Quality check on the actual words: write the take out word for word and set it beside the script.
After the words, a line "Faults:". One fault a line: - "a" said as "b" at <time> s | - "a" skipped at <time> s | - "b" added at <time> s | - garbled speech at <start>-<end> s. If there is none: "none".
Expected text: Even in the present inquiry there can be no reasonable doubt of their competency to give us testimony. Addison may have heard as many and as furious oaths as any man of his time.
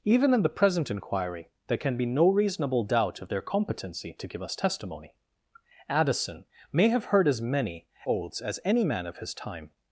Even in the present inquiry there can be no reasonable doubt of their competency to give us testimony. Addison may have heard as many oaths as any man of his time.
Faults:
- "and as furious" skipped at 7.9 s